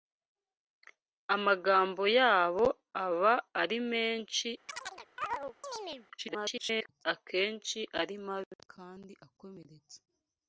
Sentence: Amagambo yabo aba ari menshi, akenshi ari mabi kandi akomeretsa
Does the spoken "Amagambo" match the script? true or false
true